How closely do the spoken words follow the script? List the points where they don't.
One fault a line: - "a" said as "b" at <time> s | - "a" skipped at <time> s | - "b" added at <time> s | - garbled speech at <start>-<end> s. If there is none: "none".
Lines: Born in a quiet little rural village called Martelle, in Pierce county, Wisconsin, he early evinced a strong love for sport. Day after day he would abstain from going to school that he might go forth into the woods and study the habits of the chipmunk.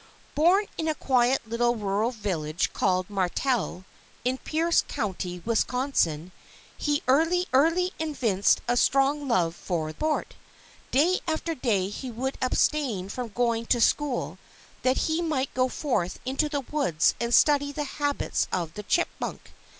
- "early" added at 7.5 s